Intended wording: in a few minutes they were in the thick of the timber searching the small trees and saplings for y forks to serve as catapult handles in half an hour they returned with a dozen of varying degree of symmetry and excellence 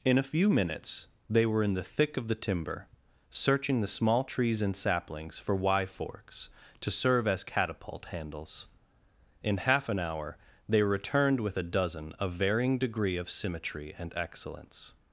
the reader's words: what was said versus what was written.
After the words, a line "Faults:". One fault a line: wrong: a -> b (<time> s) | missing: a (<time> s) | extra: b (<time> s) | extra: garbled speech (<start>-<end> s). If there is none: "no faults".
in a few minutes they were in the thick of the timber searching the small trees and saplings for y forks to serve as catapult handles in half an hour they returned with a dozen of varying degree of symmetry and excellence
Faults:
no faults